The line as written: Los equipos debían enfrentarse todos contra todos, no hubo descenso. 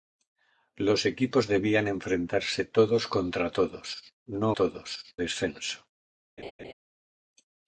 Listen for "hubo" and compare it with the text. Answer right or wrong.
wrong